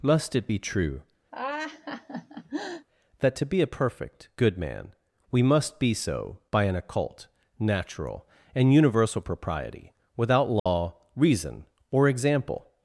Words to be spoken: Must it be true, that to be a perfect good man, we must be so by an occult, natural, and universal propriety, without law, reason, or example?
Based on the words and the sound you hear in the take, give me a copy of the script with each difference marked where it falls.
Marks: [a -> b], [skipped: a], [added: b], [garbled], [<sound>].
Must it be true, [laugh] that to be a perfect good man, we must be so by an occult, natural, and universal propriety, without law, [dropout] reason, or example?